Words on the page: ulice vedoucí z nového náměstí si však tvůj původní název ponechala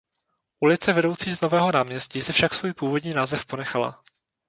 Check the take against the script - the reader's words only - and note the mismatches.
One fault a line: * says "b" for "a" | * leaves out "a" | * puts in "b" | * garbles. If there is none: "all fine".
* says "svůj" for "tvůj"